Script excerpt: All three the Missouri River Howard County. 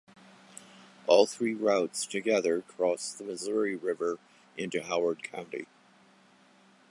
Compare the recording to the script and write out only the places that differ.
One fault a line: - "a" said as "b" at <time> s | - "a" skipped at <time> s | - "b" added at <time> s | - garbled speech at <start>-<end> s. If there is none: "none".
- "routes together cross" added at 1.5 s
- "into" added at 4.6 s